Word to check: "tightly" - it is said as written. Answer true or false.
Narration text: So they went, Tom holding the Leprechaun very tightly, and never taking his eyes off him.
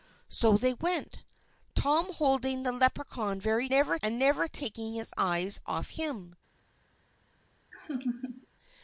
false